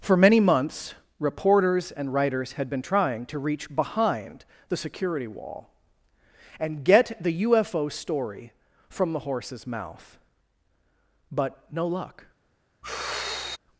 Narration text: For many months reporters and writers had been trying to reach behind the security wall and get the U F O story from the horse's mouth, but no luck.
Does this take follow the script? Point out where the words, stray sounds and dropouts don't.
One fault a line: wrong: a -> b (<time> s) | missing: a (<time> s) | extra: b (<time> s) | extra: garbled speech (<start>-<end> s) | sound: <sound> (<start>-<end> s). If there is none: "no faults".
sound: sigh (12.8-13.6 s)